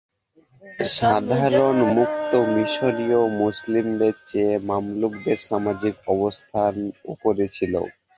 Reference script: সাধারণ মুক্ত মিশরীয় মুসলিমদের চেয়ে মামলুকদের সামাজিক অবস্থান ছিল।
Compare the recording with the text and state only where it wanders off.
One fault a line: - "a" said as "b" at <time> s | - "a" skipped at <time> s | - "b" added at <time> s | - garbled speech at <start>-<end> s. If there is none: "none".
- "উপরে" added at 7.1 s